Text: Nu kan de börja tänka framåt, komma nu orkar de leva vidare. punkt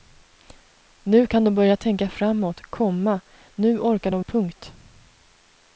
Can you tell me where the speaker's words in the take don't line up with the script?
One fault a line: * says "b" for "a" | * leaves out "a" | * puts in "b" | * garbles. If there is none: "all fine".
* leaves out "leva vidare"